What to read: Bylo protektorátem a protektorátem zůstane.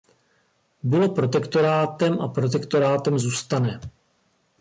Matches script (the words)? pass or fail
pass